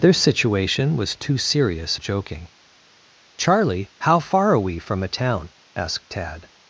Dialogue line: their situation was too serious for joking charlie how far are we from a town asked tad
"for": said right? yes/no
no